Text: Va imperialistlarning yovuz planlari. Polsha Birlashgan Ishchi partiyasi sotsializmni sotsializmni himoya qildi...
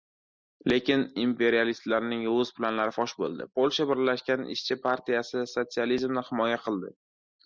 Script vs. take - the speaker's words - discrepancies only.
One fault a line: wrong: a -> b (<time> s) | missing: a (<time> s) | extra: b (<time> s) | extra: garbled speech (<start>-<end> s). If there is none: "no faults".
wrong: Va -> Lekin (0.7 s)
extra: fosh bo‘ldi (3.0 s)
missing: sotsializmni (6.3 s)